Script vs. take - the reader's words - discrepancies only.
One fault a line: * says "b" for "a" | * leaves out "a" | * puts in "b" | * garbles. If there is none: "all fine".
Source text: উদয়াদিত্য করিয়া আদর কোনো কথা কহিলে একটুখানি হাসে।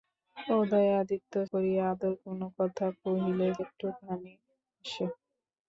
all fine